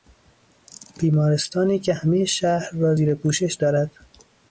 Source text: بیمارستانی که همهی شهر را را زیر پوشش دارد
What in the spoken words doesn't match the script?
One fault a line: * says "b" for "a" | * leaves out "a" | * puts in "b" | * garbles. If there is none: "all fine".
* leaves out "را"